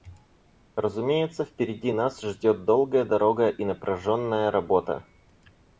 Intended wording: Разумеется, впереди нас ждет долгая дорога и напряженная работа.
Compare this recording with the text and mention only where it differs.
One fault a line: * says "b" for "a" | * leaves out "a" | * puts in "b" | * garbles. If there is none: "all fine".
all fine